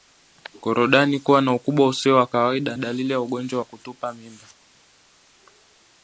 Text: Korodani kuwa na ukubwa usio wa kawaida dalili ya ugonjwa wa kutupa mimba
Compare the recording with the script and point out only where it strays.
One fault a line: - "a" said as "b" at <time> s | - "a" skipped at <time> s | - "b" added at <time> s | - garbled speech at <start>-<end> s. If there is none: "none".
none